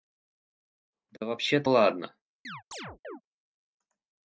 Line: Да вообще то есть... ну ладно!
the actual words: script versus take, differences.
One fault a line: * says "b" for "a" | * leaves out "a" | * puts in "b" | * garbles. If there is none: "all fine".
* leaves out "есть ну"